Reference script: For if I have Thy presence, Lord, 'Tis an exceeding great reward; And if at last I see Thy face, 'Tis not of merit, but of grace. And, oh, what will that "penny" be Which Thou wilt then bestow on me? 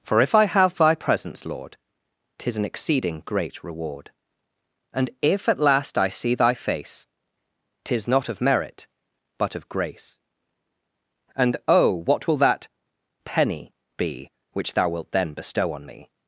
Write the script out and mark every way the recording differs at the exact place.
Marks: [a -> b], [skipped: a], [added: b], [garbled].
For if I have Thy presence, Lord, 'Tis an exceeding great reward; And if at last I see Thy face, 'Tis not of merit, but of grace. And, oh, what will that "penny" be Which Thou wilt then bestow on me?